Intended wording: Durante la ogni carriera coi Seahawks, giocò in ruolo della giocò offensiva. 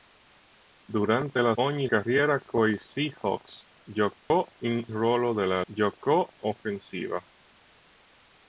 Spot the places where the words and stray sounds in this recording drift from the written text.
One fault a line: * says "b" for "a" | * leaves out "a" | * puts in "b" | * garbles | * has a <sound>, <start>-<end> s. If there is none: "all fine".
* has a dropout, 4.2-4.3 s